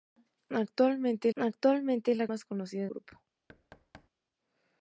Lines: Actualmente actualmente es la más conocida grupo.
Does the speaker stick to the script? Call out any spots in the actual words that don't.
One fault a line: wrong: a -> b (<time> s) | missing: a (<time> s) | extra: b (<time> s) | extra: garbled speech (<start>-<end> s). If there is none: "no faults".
no faults